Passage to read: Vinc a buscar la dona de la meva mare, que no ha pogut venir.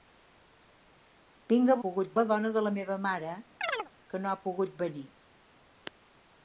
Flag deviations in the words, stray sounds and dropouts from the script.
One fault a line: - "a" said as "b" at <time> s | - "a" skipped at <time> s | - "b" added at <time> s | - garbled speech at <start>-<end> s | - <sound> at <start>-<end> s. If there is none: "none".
- "buscar" said as "pogut" at 1.8 s
- chirp at 3.6-3.9 s